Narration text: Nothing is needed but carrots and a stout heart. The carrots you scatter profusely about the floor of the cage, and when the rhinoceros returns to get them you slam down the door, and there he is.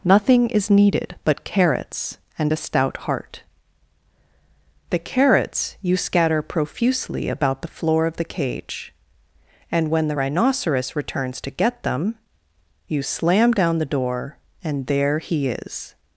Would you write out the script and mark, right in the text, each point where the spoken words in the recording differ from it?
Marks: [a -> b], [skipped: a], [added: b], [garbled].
Nothing is needed but carrots and a stout heart. The carrots you scatter profusely about the floor of the cage, and when the rhinoceros returns to get them you slam down the door, and there he is.